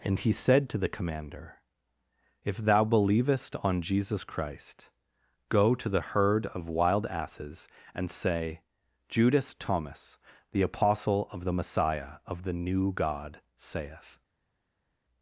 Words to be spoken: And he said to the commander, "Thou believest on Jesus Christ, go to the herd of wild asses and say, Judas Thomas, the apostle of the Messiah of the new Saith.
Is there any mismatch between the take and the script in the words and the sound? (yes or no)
yes